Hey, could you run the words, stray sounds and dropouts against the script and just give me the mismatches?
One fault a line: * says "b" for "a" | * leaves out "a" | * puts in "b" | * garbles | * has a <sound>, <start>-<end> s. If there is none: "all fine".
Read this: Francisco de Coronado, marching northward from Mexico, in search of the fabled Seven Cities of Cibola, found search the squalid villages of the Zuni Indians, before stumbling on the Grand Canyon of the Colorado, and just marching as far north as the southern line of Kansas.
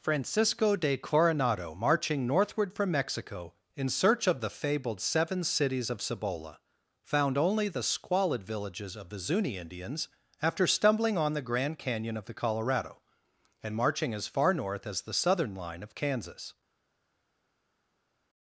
* says "only" for "search"
* says "after" for "before"
* leaves out "just"